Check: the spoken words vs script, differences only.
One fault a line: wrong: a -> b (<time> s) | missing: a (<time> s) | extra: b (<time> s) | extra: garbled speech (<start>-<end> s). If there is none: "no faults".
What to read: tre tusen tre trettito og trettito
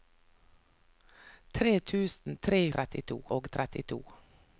no faults